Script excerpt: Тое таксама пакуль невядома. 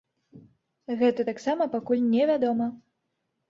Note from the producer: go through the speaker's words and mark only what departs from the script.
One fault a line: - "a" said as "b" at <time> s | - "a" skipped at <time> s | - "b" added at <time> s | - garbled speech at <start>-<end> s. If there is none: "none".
- "Тое" said as "Гэта" at 1.0 s